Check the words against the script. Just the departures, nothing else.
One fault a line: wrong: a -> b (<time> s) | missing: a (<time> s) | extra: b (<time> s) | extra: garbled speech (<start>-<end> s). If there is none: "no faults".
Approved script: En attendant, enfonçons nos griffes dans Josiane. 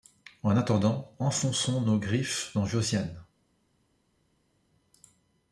no faults